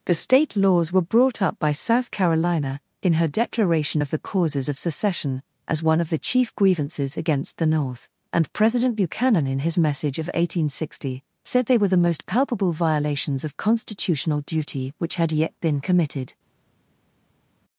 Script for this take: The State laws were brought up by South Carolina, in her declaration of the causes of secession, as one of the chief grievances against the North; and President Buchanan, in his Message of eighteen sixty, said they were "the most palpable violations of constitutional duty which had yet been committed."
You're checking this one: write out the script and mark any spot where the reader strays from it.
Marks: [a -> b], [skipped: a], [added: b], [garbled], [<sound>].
The State laws were brought up by South Carolina, in her declaration of the causes of secession, as one of the chief grievances against the North; and President Buchanan, in his Message of eighteen sixty, said they were "the most palpable violations of constitutional duty which had yet been committed."